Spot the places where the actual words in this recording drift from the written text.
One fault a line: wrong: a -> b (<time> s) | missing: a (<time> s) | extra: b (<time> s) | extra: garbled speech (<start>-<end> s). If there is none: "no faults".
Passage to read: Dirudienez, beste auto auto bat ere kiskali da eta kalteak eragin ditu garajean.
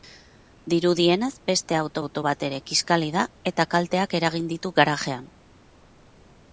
no faults